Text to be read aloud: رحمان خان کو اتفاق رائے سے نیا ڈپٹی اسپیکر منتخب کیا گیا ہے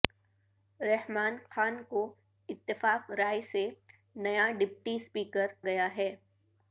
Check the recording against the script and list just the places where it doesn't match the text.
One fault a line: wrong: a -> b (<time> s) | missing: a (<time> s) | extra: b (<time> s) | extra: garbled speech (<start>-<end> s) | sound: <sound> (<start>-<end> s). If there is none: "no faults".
missing: منتخب کیا (5.5 s)